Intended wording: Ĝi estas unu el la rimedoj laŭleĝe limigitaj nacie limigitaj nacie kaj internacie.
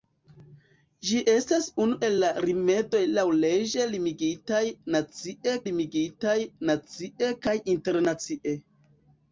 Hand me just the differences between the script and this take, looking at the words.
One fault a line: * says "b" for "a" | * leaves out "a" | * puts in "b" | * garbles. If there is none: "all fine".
all fine